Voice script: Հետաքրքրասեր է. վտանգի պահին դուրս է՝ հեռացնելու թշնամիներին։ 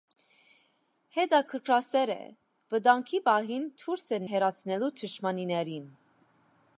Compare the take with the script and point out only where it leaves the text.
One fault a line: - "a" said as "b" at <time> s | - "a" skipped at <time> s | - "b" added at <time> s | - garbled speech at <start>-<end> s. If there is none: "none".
none